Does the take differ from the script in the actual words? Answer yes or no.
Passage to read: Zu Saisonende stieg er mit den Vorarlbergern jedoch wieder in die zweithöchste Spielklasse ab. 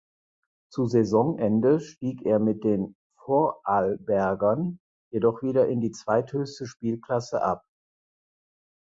no